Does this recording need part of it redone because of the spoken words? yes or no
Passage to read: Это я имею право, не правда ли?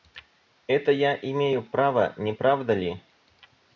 no